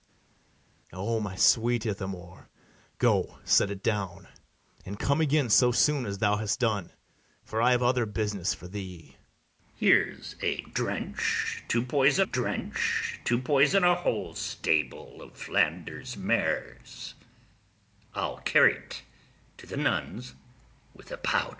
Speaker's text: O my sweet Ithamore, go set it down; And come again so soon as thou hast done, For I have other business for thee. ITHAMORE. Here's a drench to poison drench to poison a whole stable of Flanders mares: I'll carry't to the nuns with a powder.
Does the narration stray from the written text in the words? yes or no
no